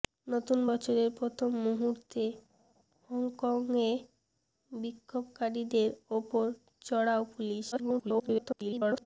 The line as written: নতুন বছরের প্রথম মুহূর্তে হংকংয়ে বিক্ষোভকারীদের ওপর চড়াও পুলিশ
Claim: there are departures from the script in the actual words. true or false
true